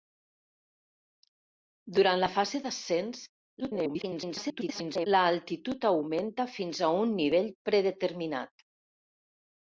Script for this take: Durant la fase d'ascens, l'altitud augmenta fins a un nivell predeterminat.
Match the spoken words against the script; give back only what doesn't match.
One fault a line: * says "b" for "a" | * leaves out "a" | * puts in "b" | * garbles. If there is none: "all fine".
* garbles